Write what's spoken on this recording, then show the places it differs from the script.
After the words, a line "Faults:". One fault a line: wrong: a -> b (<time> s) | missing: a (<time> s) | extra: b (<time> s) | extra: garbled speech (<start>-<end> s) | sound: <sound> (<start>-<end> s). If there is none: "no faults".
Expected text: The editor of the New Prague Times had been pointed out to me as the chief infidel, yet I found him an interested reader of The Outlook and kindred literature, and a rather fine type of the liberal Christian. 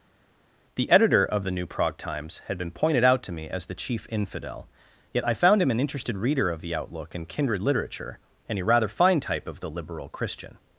The editor of the New Prague Times had been pointed out to me as the chief infidel, yet I found him an interested reader of The Outlook and kindred literature, and a rather fine type of the liberal Christian.
Faults:
no faults